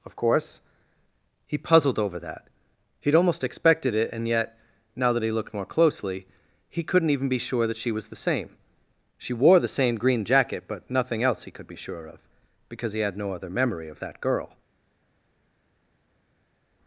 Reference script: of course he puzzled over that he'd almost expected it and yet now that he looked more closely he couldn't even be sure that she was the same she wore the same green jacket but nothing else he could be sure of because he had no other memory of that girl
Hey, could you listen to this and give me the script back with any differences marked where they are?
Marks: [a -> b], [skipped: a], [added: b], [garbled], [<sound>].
of course he puzzled over that he'd almost expected it and yet now that he looked more closely he couldn't even be sure that she was the same she wore the same green jacket but nothing else he could be sure of because he had no other memory of that girl